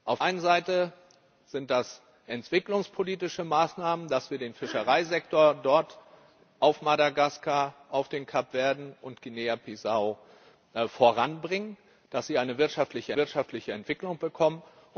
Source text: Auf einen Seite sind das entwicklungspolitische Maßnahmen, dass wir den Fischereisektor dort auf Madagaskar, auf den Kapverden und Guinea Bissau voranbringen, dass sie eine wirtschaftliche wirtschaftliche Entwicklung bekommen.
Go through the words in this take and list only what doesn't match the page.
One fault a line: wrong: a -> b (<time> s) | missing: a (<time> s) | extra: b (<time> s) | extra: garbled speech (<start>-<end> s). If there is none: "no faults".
no faults